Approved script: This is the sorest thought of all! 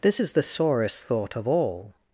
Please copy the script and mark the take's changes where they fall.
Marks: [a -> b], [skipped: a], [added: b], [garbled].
This is the sorest thought of all!